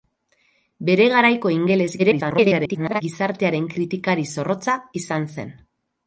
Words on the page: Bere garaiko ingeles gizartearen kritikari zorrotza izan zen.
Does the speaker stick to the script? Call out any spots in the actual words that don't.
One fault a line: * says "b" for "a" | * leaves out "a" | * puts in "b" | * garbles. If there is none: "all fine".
* garbles